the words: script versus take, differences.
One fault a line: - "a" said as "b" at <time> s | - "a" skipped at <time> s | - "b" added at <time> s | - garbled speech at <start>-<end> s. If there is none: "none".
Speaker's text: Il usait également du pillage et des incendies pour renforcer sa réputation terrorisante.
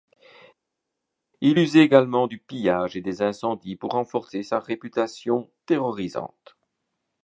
none